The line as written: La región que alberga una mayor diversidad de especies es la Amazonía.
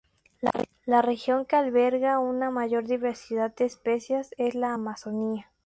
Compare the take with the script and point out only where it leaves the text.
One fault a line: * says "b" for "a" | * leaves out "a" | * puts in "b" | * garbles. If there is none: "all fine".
all fine